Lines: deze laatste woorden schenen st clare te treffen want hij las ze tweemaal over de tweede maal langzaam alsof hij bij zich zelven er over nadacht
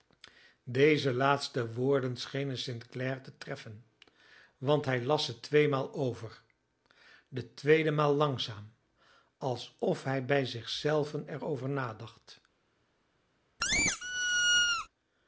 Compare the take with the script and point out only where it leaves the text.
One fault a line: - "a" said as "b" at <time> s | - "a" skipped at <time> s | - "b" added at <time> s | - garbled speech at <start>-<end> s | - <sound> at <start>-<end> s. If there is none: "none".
- squeak at 13.6-14.9 s